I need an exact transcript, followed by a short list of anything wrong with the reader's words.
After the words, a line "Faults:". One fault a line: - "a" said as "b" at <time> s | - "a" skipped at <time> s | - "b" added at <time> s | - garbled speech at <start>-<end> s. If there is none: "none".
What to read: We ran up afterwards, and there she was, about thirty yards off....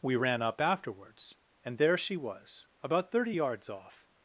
We ran up afterwards, and there she was, about thirty yards off....
Faults:
none